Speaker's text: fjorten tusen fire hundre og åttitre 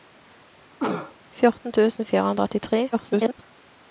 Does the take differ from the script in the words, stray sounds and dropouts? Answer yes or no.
yes